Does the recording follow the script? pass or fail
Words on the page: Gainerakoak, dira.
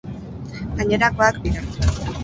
pass